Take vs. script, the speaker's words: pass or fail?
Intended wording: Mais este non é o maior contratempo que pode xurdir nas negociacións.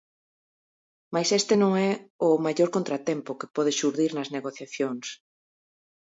pass